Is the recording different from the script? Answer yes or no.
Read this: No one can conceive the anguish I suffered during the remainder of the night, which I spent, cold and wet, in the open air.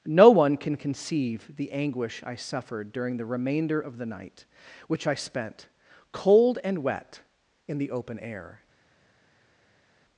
no